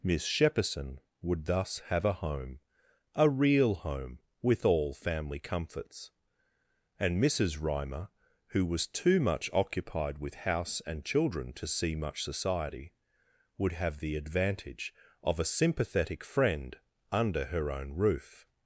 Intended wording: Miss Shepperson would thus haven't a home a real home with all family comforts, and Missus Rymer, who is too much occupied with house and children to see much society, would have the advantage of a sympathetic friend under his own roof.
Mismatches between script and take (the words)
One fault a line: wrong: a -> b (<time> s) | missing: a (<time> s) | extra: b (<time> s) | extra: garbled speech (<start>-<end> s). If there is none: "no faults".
wrong: haven't -> have (1.9 s)
wrong: is -> was (8.7 s)
wrong: his -> her (17.4 s)